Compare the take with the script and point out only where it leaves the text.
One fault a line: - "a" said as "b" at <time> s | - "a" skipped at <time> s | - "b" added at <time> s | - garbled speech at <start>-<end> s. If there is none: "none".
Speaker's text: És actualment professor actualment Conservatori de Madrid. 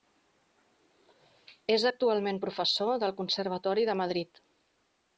- "actualment" said as "del" at 3.1 s